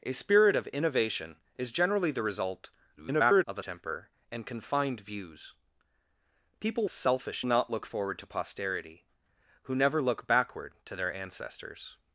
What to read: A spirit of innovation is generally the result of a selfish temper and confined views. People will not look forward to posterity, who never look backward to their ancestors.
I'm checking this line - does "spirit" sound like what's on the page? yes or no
yes